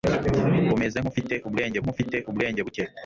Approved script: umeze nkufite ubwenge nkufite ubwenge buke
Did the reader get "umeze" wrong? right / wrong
right